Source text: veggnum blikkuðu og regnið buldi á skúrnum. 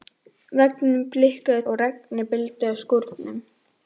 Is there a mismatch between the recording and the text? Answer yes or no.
no